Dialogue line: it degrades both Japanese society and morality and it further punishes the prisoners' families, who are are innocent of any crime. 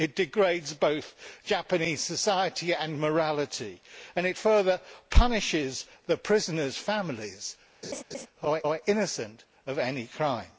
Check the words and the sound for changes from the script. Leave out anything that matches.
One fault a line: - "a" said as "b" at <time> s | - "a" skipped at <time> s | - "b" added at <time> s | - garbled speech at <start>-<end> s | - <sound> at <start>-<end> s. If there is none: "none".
- laugh at 7.8-8.3 s